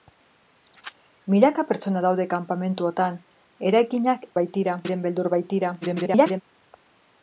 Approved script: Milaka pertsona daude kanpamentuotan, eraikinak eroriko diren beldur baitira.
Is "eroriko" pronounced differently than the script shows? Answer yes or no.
yes